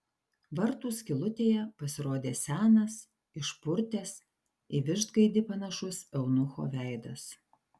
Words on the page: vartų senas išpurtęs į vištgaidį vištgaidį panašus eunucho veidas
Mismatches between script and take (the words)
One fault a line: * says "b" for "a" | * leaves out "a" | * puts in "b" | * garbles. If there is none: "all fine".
* puts in "skylutėje pasirodė"
* leaves out "vištgaidį"